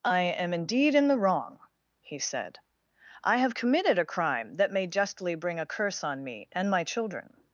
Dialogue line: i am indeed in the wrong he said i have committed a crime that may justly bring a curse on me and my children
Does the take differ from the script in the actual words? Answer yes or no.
no